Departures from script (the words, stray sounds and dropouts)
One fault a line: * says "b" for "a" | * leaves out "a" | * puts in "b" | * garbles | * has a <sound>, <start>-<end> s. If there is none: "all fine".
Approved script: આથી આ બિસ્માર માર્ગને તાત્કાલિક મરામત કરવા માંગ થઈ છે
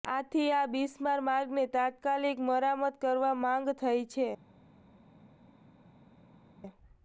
all fine